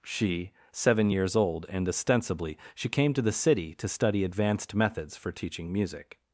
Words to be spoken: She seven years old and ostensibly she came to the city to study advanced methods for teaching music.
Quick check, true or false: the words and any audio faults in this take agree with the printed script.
true